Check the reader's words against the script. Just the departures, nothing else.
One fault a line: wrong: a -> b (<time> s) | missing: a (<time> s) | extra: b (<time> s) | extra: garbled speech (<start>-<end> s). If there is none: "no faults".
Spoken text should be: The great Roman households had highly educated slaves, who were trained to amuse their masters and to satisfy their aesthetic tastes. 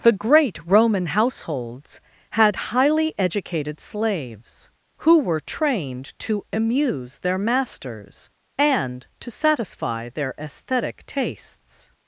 no faults